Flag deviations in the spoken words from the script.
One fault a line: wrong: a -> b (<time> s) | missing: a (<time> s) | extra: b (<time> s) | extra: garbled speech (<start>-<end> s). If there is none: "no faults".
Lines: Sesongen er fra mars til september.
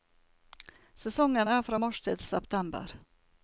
no faults